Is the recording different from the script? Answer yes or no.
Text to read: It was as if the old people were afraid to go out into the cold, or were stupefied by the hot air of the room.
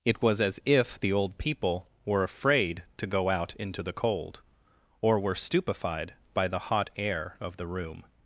no